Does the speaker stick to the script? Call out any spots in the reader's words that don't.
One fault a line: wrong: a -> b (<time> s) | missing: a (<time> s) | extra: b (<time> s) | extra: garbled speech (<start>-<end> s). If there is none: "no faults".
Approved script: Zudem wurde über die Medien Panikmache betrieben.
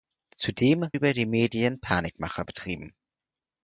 missing: wurde (0.9 s)